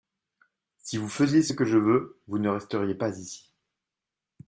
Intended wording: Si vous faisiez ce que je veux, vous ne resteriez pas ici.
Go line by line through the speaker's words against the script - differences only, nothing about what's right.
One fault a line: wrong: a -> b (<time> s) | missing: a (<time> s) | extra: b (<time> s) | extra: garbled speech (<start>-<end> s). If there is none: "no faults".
no faults